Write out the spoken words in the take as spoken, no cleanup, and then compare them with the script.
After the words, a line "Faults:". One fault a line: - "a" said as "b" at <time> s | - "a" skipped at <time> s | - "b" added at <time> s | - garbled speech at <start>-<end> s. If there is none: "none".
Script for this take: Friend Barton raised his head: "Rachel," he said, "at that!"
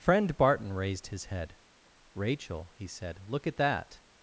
Friend Barton raised his head: "Rachel," he said, "look at that!"
Faults:
- "look" added at 3.3 s